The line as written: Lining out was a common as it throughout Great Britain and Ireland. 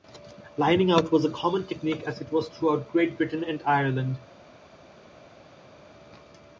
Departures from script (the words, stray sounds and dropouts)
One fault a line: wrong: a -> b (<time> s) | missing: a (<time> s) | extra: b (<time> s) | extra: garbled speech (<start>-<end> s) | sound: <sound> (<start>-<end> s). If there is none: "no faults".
extra: technique (1.7 s)
extra: was (2.3 s)